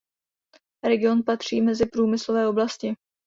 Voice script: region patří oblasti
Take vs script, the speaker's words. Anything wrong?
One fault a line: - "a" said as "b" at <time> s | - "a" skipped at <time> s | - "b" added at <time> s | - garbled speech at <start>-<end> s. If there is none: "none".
- "mezi průmyslové" added at 1.6 s